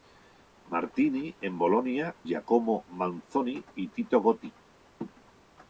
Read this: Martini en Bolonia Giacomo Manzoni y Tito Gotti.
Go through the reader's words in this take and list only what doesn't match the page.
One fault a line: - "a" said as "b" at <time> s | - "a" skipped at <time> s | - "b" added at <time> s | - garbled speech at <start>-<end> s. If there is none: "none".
none